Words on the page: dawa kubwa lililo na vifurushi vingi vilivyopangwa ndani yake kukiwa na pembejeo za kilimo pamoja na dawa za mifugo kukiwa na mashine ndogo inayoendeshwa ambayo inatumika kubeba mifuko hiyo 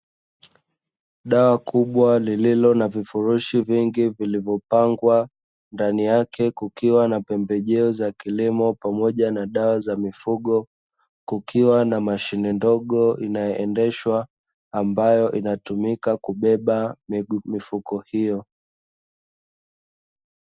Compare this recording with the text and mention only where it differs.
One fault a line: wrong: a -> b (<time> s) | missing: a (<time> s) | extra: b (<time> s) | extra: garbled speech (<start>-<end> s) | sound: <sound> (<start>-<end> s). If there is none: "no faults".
no faults